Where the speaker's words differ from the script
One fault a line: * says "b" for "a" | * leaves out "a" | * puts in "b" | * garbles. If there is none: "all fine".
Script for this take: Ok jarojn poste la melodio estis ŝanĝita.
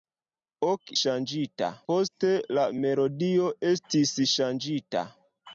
* says "ŝanĝita" for "jarojn"